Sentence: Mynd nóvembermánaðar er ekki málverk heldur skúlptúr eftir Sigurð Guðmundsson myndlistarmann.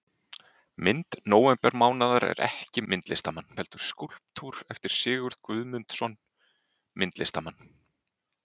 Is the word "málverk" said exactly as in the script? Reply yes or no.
no